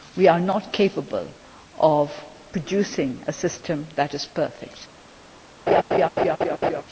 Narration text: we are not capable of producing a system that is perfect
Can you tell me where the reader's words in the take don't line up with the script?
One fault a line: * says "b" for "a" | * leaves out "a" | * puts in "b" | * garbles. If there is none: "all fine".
all fine